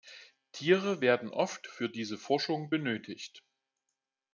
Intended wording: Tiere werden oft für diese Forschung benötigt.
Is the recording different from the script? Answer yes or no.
no